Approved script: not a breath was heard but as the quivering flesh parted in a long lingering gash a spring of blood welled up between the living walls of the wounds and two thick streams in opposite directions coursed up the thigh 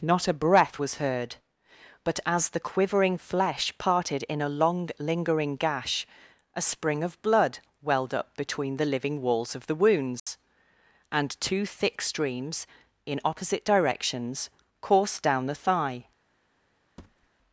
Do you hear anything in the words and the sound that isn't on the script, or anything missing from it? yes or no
yes